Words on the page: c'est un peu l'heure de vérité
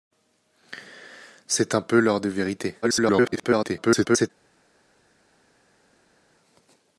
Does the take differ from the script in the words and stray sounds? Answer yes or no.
yes